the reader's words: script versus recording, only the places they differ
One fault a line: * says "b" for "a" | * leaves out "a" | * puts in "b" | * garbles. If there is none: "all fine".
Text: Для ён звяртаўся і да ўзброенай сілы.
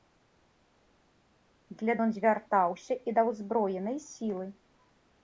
all fine